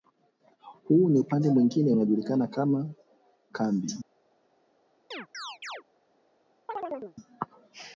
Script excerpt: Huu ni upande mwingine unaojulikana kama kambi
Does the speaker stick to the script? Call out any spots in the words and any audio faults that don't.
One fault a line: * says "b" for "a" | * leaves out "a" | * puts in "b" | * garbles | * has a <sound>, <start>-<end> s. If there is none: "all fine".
* has a chirp, 5.1-5.8 s
* has a chirp, 6.7-7.2 s